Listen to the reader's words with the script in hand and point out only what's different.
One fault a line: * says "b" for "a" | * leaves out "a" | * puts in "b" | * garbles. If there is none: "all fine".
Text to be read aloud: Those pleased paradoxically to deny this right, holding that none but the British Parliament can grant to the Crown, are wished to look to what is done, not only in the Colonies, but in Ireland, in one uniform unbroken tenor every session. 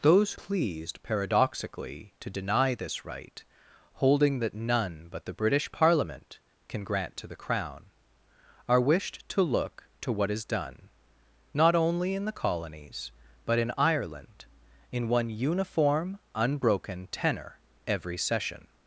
all fine